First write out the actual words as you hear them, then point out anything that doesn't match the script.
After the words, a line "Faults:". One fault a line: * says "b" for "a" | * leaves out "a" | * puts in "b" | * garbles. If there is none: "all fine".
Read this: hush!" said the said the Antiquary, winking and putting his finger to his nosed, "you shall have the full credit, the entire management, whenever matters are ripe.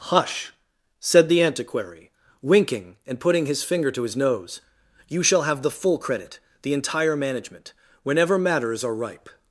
hush!" said the Antiquary, winking and putting his finger to his nose, "you shall have the full credit, the entire management, whenever matters are ripe.
Faults:
* leaves out "said the"
* says "nose" for "nosed"